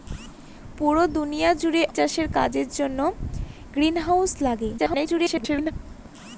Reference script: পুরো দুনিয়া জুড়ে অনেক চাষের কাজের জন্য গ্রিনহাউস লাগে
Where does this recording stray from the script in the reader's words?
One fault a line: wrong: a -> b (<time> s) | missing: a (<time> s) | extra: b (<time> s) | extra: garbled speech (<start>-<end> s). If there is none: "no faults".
missing: অনেক (1.8 s)
extra: garbled speech (4.8-5.7 s)